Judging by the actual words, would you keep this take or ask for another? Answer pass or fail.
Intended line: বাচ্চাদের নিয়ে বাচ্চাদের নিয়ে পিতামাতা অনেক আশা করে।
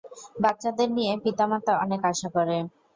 fail